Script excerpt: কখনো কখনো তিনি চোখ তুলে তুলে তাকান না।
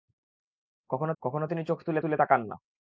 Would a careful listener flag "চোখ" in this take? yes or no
no